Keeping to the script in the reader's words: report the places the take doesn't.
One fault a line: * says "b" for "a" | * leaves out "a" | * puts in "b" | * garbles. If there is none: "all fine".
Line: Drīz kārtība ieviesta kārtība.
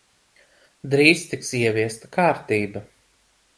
* says "tiks" for "kārtība"